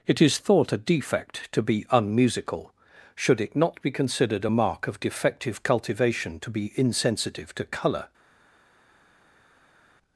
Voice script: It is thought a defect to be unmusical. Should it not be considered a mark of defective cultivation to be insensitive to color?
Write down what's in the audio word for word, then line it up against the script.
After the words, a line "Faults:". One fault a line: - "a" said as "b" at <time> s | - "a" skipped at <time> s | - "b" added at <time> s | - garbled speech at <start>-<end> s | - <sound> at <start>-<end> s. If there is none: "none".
It is thought a defect to be unmusical. Should it not be considered a mark of defective cultivation to be insensitive to color?
Faults:
none